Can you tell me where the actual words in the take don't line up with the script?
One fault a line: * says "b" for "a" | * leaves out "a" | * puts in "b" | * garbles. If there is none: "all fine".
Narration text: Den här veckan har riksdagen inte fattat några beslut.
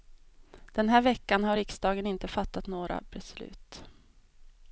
all fine